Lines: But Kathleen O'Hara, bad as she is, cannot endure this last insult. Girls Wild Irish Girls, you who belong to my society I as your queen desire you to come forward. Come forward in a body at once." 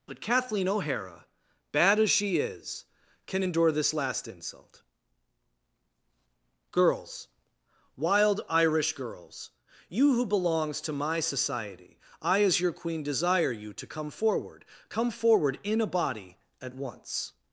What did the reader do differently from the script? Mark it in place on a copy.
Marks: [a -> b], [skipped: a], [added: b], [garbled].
But Kathleen O'Hara, bad as she is, [cannot -> can] endure this last insult. Girls Wild Irish Girls, you who [belong -> belongs] to my society I as your queen desire you to come forward. Come forward in a body at once."